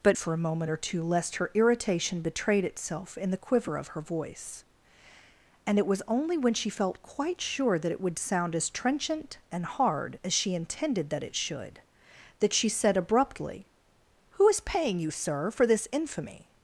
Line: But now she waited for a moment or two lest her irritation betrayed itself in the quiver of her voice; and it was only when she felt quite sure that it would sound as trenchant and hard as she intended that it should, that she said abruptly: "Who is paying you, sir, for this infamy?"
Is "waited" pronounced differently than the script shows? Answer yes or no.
yes